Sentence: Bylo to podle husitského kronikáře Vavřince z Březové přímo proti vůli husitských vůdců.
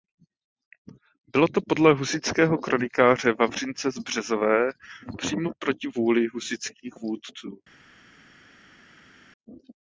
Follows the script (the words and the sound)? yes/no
yes